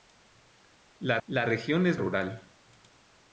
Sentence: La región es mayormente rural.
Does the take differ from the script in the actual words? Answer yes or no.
yes